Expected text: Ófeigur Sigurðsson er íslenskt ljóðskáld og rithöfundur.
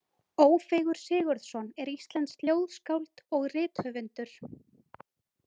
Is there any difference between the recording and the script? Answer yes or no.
no